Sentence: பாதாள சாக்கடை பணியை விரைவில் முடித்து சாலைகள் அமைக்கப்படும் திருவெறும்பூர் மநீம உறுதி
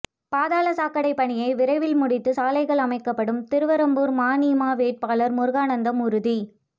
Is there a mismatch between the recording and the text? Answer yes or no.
yes